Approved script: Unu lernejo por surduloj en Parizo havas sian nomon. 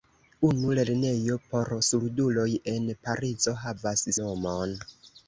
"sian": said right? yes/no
no